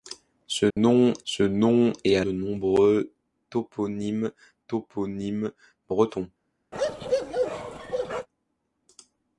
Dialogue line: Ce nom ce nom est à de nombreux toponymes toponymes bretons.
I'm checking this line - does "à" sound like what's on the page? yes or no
yes